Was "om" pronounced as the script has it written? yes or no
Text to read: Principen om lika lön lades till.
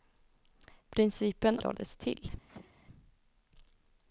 no